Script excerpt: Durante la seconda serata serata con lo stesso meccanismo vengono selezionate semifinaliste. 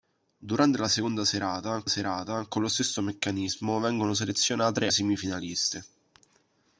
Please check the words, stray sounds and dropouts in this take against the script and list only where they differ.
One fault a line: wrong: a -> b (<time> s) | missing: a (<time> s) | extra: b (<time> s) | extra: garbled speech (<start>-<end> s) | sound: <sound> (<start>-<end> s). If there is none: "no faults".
no faults